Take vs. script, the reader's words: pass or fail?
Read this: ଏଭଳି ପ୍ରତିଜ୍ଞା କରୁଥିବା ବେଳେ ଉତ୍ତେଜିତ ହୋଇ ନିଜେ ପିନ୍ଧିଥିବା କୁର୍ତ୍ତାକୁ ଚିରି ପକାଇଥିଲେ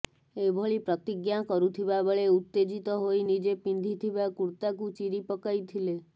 pass